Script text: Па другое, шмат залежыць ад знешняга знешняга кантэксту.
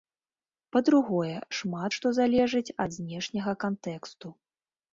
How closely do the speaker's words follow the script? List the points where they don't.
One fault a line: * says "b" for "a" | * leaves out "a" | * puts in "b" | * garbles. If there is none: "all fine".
* puts in "што"
* leaves out "знешняга"